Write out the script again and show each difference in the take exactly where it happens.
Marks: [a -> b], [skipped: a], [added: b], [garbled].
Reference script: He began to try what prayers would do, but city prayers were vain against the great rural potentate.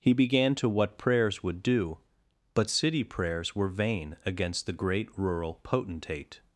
He began to [skipped: try] what prayers would do, but city prayers were vain against the great rural potentate.